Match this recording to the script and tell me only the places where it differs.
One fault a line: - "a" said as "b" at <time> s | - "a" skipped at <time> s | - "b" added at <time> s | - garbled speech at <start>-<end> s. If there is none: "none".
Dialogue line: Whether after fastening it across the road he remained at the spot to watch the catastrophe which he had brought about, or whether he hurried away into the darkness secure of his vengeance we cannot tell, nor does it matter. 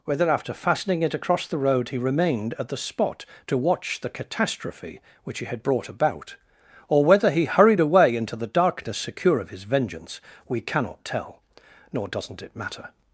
- "does" said as "doesn't" at 12.1 s